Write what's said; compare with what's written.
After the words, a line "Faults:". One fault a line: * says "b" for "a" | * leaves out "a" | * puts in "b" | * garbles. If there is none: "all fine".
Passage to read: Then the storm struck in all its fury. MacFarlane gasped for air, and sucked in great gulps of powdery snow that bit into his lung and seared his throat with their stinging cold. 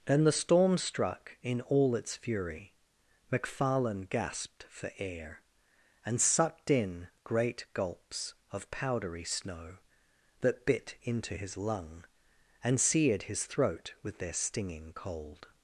Then the storm struck in all its fury. MacFarlane gasped for air, and sucked in great gulps of powdery snow that bit into his lung and seared his throat with their stinging cold.
Faults:
all fine